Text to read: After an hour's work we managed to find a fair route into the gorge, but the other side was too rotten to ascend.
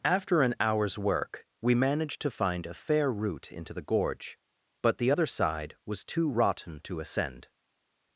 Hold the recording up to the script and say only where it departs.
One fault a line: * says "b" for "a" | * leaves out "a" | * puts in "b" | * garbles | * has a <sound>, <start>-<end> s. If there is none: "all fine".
all fine